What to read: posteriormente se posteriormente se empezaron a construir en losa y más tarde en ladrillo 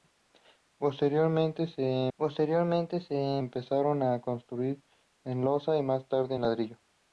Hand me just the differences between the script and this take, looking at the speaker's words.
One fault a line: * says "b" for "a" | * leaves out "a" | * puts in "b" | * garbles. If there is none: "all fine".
all fine